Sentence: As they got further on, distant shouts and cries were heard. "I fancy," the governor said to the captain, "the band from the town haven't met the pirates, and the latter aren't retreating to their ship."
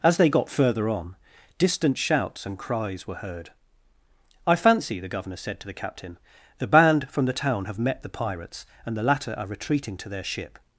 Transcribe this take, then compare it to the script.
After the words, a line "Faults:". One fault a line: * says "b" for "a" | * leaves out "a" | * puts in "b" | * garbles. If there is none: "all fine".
As they got further on, distant shouts and cries were heard. "I fancy," the governor said to the captain, "the band from the town have met the pirates, and the latter are retreating to their ship."
Faults:
* says "have" for "haven't"
* says "are" for "aren't"